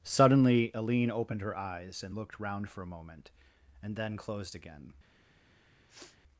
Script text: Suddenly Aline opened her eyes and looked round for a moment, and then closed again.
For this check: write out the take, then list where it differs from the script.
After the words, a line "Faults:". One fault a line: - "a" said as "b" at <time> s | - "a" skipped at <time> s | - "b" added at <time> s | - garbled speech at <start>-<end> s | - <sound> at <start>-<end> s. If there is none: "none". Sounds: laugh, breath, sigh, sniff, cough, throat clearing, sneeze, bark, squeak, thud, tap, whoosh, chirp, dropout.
Suddenly Aline opened her eyes and looked round for a moment, and then closed again.
Faults:
- sniff at 5.9-6.2 s